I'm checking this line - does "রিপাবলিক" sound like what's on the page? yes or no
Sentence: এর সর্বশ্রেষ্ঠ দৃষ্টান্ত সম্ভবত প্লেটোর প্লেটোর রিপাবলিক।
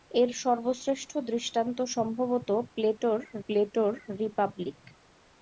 yes